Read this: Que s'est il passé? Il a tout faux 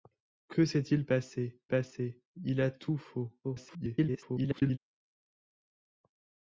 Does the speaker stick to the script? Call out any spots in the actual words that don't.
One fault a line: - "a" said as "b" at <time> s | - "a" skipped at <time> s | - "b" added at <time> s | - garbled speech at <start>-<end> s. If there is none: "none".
- "passé" added at 1.7 s
- garbled speech at 3.4-4.8 s